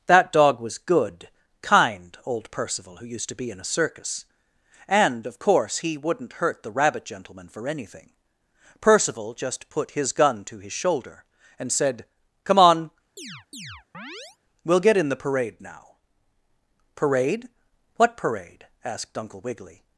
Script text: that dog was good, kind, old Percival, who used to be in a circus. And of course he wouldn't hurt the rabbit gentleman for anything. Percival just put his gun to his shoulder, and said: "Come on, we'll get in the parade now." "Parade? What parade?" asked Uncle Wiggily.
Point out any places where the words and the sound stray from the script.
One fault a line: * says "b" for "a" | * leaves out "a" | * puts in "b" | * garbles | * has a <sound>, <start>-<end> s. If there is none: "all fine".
* has a chirp, 13.2-14.4 s